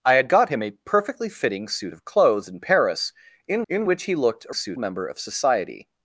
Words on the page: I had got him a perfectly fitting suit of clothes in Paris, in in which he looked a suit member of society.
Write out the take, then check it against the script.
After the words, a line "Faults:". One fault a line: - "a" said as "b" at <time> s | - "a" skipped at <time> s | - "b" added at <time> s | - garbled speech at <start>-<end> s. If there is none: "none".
I had got him a perfectly fitting suit of clothes in Paris, in in which he looked a suit member of society.
Faults:
none